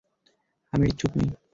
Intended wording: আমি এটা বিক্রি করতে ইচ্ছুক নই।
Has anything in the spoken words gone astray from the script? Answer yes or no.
yes